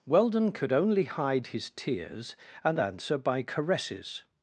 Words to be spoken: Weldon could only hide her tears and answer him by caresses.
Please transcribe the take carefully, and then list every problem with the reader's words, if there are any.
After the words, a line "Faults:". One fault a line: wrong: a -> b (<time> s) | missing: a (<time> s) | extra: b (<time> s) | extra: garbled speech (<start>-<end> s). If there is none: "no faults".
Weldon could only hide his tears and answer by caresses.
Faults:
wrong: her -> his (1.5 s)
missing: him (3.2 s)